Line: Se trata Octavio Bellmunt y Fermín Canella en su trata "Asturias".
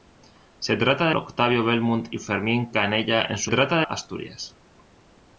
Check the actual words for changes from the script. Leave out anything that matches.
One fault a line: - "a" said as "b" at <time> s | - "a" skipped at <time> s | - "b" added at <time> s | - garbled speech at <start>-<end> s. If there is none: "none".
none